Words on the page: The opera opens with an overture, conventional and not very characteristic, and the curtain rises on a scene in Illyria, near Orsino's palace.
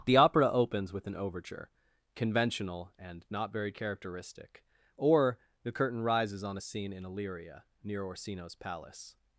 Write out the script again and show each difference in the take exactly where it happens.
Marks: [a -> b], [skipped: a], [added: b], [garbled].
The opera opens with an overture, conventional and not very characteristic, [and -> or] the curtain rises on a scene in Illyria, near Orsino's palace.